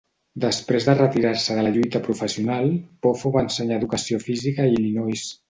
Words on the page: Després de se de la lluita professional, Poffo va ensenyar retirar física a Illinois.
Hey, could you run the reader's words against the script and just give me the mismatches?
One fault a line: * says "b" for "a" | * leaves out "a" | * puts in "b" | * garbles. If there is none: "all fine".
* puts in "retirar"
* says "educació" for "retirar"